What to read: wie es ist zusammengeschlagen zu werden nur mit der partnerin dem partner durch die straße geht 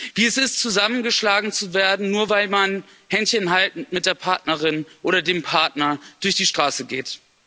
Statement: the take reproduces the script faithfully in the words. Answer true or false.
false